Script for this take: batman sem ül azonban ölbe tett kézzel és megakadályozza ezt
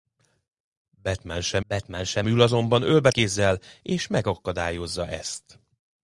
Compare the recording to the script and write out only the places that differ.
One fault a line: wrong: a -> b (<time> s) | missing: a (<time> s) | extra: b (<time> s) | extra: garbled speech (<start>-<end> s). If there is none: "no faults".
extra: batman sem (1.7 s)
missing: tett (3.1 s)